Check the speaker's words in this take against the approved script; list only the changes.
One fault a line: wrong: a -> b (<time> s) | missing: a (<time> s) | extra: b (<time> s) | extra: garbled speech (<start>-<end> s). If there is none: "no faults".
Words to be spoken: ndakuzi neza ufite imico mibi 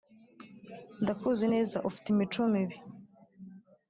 no faults